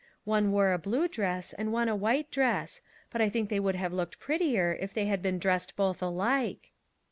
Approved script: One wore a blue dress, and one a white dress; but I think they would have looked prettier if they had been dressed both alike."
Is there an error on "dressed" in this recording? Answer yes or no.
no